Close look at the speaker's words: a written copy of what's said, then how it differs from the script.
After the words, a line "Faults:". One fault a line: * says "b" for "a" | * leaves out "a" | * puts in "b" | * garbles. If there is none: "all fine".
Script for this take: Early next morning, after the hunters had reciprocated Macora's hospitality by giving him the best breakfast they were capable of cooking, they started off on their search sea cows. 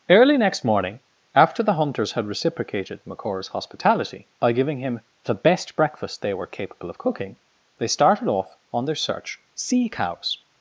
Early next morning, after the hunters had reciprocated Macora's hospitality by giving him the best breakfast they were capable of cooking, they started off on their search sea cows.
Faults:
all fine